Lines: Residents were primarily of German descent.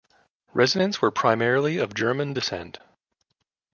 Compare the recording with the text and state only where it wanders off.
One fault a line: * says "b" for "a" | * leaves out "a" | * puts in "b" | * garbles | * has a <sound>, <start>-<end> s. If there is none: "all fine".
all fine